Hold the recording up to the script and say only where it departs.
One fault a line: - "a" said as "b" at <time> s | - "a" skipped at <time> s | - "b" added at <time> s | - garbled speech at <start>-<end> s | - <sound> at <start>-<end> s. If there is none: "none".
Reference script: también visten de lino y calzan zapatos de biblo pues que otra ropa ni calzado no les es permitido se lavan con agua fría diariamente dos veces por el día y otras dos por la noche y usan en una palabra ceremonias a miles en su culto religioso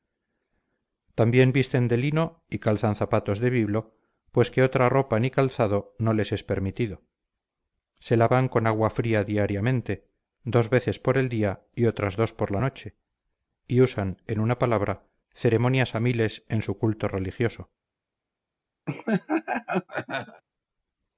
- laugh at 18.9-20.4 s